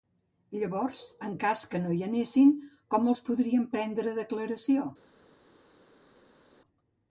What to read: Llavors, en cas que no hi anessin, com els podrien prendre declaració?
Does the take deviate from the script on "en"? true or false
false